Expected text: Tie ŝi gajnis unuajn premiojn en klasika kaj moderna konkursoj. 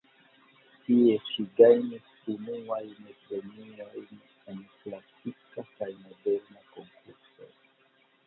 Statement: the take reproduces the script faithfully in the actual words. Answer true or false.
true